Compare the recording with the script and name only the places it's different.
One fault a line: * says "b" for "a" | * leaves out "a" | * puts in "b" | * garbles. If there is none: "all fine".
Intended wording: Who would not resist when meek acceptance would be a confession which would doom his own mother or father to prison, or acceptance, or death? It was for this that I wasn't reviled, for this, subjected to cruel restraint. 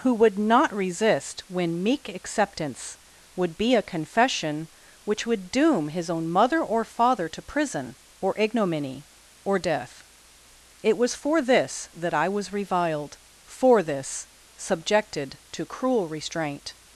* says "ignominy" for "acceptance"
* says "was" for "wasn't"